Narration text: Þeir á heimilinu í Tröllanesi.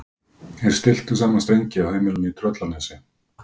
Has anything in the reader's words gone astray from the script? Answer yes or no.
yes